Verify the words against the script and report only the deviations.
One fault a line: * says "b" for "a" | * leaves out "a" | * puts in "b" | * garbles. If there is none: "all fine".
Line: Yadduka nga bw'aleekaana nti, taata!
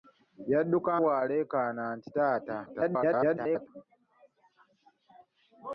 * leaves out "nga"
* garbles